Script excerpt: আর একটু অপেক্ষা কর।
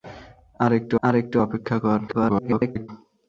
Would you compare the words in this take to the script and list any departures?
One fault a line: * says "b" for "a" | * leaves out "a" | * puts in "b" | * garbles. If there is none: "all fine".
* puts in "আর একটু"
* garbles